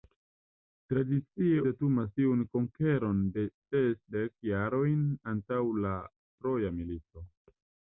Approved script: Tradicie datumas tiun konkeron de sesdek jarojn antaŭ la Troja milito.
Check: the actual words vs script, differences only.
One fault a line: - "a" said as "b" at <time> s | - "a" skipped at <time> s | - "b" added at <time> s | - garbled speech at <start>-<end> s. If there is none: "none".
none